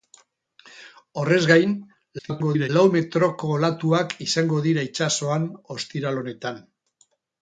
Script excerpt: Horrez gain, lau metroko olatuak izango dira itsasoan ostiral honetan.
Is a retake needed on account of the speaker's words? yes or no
yes